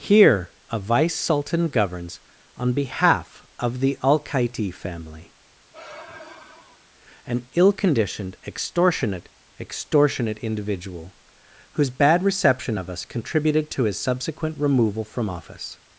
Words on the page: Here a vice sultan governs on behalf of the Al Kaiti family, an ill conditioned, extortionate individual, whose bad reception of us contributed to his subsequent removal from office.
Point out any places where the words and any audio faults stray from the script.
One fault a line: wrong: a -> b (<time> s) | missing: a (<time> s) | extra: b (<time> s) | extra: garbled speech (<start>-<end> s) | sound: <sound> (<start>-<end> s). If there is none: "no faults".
sound: sigh (5.7-6.9 s)
extra: extortionate (9.6 s)